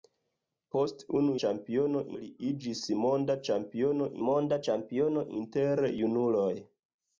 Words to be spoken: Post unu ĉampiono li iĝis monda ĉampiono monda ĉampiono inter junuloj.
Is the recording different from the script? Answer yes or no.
no